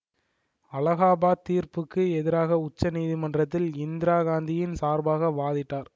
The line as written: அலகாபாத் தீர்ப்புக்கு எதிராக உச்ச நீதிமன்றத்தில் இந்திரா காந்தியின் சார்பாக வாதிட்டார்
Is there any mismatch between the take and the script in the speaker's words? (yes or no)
no